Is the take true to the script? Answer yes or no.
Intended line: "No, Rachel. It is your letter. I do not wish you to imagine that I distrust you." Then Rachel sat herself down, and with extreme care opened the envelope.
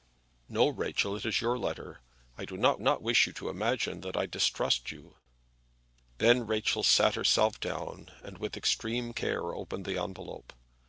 no